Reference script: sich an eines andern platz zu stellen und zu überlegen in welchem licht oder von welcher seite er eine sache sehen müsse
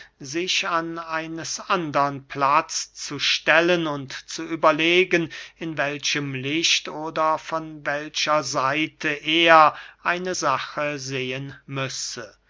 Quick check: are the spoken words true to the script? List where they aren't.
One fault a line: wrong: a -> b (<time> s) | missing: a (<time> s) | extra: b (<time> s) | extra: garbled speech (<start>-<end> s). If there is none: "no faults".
no faults